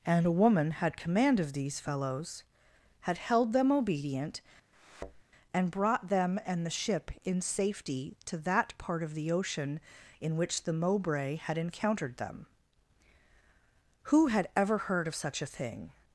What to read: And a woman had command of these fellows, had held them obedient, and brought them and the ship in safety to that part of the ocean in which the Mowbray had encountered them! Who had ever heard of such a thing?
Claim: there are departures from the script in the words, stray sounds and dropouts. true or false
true